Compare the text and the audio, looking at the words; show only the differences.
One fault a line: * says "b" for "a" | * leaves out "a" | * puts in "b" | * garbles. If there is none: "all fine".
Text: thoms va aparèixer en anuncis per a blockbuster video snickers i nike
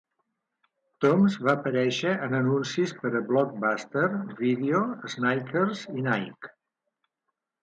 all fine